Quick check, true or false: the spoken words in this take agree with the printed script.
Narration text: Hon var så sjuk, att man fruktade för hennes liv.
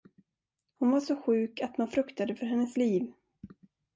true